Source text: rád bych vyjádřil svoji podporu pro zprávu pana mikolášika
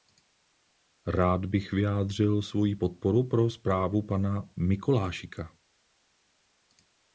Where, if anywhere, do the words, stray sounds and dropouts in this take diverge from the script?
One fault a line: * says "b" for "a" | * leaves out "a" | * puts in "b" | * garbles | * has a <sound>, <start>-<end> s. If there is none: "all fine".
all fine